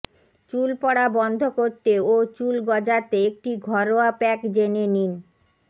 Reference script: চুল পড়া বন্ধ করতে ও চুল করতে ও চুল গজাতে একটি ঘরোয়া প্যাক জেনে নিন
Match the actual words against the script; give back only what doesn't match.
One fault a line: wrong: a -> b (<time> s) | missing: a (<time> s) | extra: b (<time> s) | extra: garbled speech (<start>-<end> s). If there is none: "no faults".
missing: করতে ও চুল (2.5 s)